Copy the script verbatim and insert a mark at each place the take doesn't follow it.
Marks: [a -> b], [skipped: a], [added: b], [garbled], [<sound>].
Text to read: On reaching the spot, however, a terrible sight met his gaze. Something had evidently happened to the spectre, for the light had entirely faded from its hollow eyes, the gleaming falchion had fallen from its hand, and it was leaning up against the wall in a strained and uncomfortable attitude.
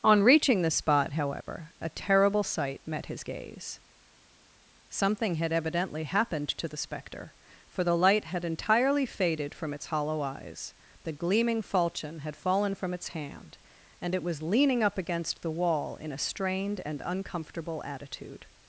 On reaching the spot, however, a terrible sight met his gaze. Something had evidently happened to the spectre, for the light had entirely faded from its hollow eyes, the gleaming falchion had fallen from its hand, and it was leaning up against the wall in a strained and uncomfortable attitude.